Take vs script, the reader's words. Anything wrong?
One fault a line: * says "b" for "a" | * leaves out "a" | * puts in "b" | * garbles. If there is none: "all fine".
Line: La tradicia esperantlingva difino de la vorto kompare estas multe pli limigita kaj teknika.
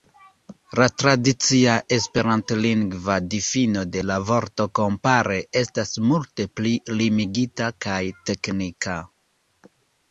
all fine